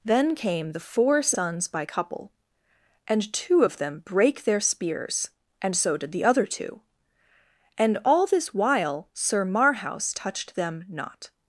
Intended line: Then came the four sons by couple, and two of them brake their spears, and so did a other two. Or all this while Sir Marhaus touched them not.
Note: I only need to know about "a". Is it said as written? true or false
false